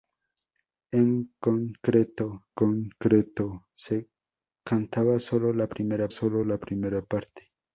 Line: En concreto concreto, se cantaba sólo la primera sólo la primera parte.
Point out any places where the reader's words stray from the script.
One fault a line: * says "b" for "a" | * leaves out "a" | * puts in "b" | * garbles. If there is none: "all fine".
all fine